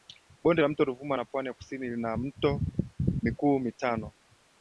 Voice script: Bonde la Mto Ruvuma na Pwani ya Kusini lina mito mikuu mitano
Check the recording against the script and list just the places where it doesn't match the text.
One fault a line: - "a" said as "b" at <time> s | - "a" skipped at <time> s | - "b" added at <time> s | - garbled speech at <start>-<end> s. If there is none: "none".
none